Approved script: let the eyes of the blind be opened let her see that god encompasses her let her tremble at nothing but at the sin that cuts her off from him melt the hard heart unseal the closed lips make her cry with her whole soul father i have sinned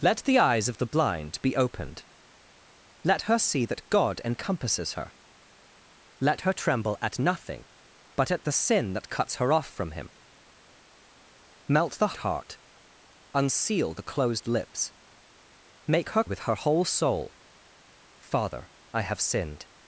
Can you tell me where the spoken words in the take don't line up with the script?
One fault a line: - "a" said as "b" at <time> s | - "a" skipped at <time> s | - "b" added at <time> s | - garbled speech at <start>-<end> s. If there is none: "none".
- "hard" skipped at 12.1 s
- "cry" skipped at 16.2 s